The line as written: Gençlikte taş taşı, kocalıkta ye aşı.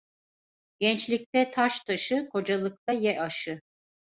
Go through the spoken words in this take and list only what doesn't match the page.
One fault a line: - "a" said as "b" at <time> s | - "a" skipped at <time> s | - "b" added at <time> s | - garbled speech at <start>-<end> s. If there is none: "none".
none